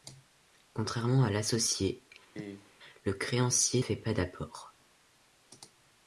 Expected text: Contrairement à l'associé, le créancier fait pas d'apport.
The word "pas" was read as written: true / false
true